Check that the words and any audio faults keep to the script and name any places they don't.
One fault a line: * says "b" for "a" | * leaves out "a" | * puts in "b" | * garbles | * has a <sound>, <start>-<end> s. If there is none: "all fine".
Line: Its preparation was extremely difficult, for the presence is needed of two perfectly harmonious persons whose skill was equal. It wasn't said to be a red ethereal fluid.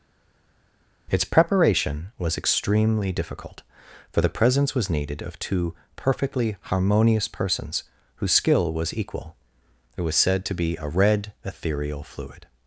* says "was" for "is"
* says "was" for "wasn't"